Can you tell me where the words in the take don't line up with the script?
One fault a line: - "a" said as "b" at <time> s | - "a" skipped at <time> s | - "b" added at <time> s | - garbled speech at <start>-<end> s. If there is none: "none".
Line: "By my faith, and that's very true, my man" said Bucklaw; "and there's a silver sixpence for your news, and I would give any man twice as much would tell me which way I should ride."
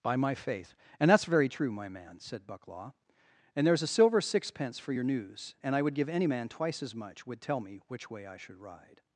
none